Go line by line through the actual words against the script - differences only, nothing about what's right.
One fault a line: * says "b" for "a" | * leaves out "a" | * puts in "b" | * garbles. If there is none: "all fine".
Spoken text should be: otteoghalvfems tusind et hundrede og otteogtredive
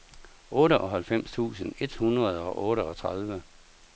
all fine